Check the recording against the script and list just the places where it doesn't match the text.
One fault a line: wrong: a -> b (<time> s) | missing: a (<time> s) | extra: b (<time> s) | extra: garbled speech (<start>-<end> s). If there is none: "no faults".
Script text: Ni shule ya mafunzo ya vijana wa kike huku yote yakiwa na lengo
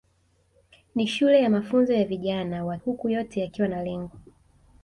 missing: kike (2.8 s)